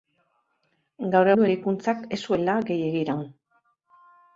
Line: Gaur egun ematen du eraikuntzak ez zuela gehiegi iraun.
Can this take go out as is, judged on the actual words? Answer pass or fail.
fail